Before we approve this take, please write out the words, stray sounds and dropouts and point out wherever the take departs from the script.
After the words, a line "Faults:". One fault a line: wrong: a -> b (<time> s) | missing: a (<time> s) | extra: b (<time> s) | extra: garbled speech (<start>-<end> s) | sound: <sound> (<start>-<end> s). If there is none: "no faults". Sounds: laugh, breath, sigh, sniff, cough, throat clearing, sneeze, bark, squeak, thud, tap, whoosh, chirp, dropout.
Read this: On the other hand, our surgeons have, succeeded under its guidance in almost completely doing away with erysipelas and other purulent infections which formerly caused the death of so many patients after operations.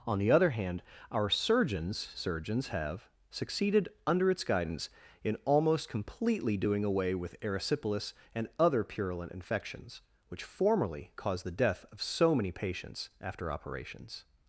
On the other hand, our surgeons surgeons have, succeeded under its guidance in almost completely doing away with erysipelas and other purulent infections which formerly caused the death of so many patients after operations.
Faults:
extra: surgeons (2.0 s)